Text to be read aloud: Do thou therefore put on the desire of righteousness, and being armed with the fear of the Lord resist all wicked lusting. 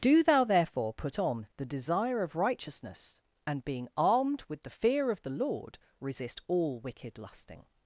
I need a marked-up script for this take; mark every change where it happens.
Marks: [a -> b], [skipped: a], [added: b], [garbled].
Do thou therefore put on the desire of righteousness, and being armed with the fear of the Lord resist all wicked lusting.